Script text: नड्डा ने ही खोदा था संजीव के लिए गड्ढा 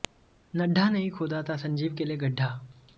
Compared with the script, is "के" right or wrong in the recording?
right